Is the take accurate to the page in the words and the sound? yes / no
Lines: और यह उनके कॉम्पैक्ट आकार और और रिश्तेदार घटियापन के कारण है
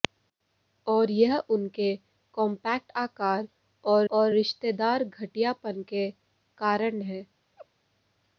no